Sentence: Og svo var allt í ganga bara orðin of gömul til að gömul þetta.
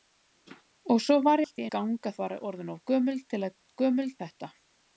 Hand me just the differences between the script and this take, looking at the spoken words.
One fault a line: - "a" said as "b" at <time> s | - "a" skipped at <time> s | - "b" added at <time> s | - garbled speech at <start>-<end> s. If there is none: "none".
none